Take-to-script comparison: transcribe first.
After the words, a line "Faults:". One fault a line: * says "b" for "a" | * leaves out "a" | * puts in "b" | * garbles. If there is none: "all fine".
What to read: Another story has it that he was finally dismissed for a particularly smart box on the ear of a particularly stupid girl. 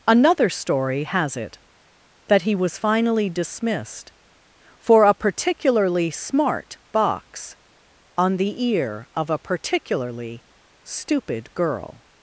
Another story has it that he was finally dismissed for a particularly smart box on the ear of a particularly stupid girl.
Faults:
all fine